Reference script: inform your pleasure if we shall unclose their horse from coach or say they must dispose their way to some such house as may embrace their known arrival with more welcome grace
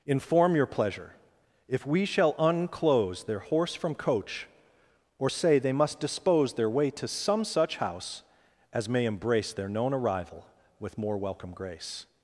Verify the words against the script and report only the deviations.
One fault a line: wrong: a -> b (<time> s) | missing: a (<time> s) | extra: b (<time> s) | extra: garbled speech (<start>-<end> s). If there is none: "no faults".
no faults